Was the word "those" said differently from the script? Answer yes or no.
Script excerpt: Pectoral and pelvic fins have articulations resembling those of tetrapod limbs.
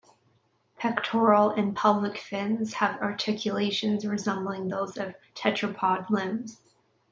no